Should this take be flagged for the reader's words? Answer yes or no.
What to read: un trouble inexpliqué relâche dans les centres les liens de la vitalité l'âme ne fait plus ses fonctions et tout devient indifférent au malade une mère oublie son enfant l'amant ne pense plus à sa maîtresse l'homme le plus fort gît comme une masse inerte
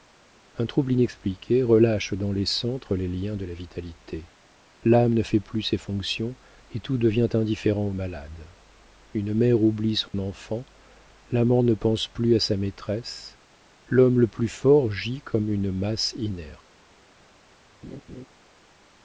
no